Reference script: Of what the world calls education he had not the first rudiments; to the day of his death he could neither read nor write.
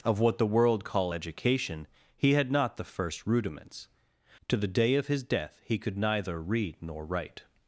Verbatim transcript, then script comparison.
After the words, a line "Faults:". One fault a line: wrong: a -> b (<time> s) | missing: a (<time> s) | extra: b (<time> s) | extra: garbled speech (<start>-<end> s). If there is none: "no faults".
Of what the world call education he had not the first rudiments; to the day of his death he could neither read nor write.
Faults:
wrong: calls -> call (0.8 s)